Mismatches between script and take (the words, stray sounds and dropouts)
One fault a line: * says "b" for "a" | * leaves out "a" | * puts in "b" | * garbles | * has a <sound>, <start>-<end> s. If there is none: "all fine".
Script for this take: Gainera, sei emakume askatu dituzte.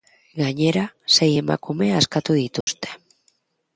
* has a dropout, 2.6-2.7 s